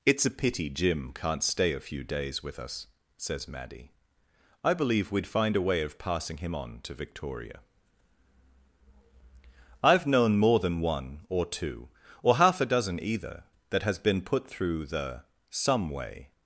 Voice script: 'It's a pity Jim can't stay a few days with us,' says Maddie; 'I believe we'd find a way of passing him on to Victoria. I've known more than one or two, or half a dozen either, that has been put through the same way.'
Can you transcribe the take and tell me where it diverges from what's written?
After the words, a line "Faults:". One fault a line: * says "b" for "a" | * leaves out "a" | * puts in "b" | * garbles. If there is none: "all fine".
'It's a pity Jim can't stay a few days with us,' says Maddie; 'I believe we'd find a way of passing him on to Victoria. I've known more than one or two, or half a dozen either, that has been put through the some way.'
Faults:
* says "some" for "same"